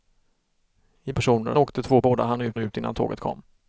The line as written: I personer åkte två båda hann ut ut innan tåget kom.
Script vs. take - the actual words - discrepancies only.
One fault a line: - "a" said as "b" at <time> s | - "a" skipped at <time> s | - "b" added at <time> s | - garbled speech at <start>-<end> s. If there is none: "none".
none